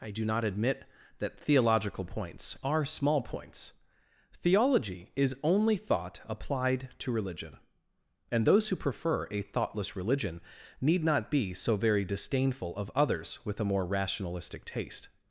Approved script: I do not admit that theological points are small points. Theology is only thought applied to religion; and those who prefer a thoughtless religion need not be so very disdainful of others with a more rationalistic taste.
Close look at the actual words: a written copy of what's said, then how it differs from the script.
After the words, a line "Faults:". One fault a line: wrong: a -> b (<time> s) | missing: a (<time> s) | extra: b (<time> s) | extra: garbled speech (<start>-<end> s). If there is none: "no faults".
I do not admit that theological points are small points. Theology is only thought applied to religion; and those who prefer a thoughtless religion need not be so very disdainful of others with a more rationalistic taste.
Faults:
no faults